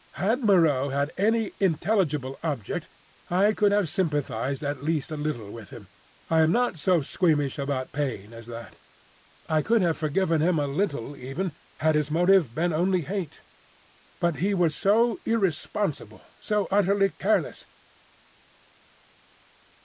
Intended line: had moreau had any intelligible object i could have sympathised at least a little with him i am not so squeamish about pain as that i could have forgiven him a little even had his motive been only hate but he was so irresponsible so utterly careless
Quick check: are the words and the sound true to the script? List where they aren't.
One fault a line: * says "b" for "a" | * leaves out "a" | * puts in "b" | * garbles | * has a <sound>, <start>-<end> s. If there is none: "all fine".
all fine